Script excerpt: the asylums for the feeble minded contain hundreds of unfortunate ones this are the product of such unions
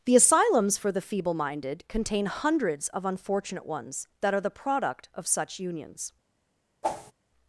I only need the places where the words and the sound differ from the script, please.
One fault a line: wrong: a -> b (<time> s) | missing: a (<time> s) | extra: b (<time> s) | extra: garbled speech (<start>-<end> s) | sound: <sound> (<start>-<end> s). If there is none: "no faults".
wrong: this -> that (4.2 s)
sound: whoosh (6.8-7.1 s)